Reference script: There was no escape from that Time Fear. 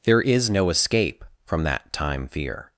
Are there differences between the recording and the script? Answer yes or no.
yes